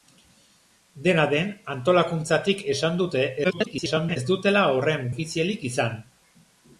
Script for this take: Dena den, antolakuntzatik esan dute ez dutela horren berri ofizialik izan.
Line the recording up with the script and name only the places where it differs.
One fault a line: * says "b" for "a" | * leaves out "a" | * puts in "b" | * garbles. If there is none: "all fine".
* garbles
* leaves out "berri"